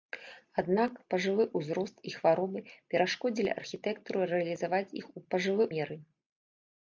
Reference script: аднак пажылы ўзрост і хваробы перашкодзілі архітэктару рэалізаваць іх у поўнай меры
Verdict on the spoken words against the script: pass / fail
fail